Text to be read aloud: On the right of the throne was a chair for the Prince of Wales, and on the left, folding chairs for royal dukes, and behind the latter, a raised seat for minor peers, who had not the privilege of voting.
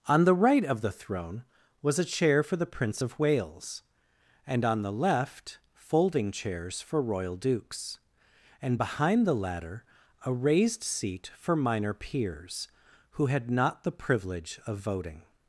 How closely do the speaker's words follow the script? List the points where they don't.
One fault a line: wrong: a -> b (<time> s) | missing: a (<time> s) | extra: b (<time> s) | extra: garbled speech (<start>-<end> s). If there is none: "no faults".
no faults